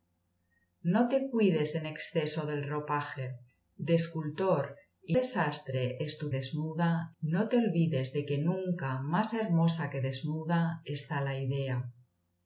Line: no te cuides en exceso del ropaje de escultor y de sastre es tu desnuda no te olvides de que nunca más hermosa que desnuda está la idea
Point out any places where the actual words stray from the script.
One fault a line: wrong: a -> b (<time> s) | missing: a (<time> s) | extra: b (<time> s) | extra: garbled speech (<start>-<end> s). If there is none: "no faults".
no faults